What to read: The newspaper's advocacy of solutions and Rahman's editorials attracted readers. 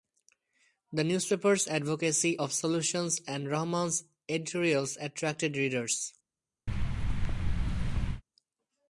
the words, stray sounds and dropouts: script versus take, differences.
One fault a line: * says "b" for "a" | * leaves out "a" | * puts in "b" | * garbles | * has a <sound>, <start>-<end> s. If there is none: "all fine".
* has a thud, 6.7-8.2 s